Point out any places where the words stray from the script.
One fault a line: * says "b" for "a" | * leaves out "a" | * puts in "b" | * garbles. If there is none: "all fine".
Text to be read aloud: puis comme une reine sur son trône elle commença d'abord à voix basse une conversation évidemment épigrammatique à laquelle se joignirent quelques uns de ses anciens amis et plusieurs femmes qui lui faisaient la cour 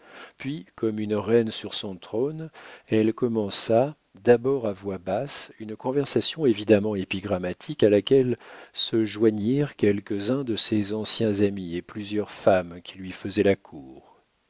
all fine